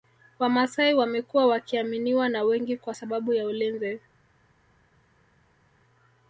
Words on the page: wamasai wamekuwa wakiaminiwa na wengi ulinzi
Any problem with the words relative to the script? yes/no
yes